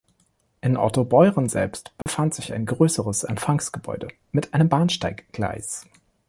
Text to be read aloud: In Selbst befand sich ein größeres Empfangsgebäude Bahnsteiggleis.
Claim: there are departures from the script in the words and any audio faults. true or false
true